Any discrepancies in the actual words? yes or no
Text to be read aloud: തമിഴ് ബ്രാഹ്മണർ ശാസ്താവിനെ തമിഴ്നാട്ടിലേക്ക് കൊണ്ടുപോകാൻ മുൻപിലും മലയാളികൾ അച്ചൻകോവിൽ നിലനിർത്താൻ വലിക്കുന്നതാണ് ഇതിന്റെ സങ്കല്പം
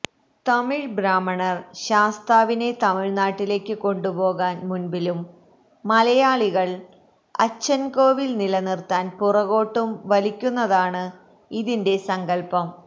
yes